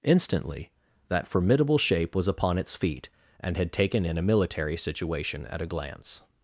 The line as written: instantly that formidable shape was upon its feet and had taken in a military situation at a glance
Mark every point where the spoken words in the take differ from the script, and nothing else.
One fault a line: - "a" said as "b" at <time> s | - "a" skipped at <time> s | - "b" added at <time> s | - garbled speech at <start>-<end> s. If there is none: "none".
none